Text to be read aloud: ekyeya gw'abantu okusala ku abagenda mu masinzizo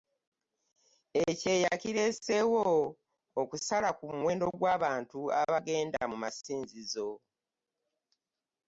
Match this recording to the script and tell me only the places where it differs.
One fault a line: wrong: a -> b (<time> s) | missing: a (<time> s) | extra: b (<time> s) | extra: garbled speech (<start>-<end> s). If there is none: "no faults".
wrong: gw'abantu -> kireeseewo (1.8 s)
extra: muwendo gw'abantu (4.2 s)